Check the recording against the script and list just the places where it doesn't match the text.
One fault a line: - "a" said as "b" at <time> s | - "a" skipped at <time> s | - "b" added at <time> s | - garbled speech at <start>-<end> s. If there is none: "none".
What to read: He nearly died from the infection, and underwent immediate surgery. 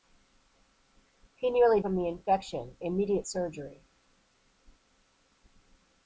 - "died" skipped at 1.8 s
- "and underwent" skipped at 2.8 s